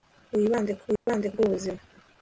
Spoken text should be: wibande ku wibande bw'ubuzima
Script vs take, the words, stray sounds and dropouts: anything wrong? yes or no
yes